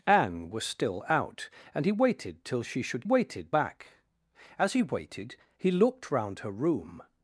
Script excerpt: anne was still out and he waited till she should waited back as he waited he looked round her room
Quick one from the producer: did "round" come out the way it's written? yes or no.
yes